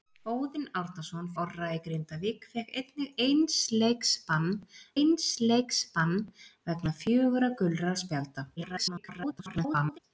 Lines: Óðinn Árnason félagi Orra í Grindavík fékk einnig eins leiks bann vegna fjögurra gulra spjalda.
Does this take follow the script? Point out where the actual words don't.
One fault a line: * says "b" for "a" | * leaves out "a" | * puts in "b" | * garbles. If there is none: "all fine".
* leaves out "félagi"
* puts in "eins leiks bann"
* garbles